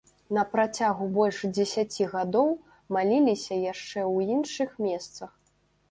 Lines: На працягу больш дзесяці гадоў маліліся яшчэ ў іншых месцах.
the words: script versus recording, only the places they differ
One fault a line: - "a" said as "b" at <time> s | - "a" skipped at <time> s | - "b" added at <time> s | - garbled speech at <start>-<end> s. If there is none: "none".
none